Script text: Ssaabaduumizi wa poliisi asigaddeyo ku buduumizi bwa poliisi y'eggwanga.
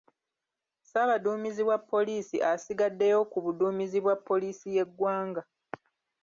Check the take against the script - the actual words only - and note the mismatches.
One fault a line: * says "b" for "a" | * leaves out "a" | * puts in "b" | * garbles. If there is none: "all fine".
all fine